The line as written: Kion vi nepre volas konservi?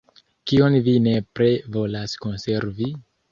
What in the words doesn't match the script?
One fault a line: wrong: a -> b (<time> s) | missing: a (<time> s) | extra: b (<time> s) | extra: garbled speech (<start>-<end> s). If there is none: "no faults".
no faults